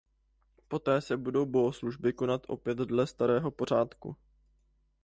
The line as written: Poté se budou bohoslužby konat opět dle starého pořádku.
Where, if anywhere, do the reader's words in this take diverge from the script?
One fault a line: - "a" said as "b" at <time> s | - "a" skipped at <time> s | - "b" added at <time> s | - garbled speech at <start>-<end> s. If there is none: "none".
none